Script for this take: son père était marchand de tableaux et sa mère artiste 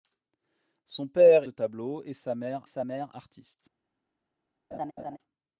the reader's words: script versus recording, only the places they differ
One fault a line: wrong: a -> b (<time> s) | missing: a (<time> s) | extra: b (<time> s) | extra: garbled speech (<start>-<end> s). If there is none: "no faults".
missing: était marchand (1.4 s)
extra: sa mère (2.6 s)